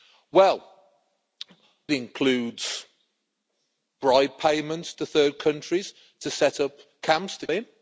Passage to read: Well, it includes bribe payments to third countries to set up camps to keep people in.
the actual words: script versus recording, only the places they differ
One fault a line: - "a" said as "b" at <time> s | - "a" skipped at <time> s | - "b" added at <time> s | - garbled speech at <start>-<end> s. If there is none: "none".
- "it" skipped at 0.6 s
- "keep people" skipped at 7.5 s